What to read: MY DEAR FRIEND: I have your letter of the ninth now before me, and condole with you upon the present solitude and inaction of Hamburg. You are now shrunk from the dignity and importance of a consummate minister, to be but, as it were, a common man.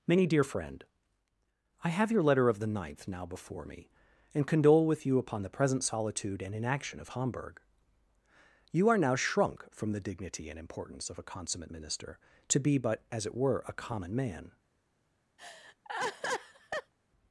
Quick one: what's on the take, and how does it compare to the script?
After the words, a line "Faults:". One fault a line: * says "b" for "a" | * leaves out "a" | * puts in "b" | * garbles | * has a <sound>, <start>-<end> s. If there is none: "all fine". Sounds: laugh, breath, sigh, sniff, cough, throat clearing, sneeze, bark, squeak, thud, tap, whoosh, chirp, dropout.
Many DEAR FRIEND: I have your letter of the ninth now before me, and condole with you upon the present solitude and inaction of Hamburg. You are now shrunk from the dignity and importance of a consummate minister, to be but, as it were, a common man.
Faults:
* says "Many" for "MY"
* has a laugh, 15.4-16.9 s